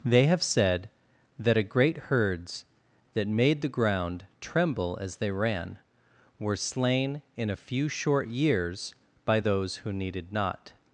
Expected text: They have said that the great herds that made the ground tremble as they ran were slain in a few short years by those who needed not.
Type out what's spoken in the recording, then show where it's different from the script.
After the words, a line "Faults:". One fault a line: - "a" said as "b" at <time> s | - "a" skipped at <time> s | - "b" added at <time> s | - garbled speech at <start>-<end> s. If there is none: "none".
They have said that a great herds that made the ground tremble as they ran were slain in a few short years by those who needed not.
Faults:
- "the" said as "a" at 1.6 s